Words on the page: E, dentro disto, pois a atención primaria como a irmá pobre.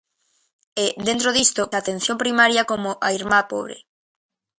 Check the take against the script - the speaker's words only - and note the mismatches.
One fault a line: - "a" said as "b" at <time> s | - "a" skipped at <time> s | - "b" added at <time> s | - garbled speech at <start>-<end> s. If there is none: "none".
- "pois" skipped at 1.6 s